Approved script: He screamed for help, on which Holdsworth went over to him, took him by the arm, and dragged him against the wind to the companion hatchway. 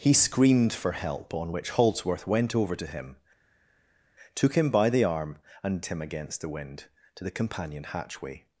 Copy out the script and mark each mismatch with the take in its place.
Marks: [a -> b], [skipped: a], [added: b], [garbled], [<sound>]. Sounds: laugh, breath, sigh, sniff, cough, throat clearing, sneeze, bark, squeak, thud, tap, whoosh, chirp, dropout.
He screamed for help, on which Holdsworth went over to him, took him by the arm, and [skipped: dragged] him against the wind to the companion hatchway.